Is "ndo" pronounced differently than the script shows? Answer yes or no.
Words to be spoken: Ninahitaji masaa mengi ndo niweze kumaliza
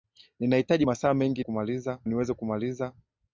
yes